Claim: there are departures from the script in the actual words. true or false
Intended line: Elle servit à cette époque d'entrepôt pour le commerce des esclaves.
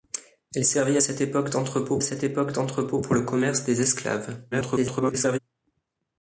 true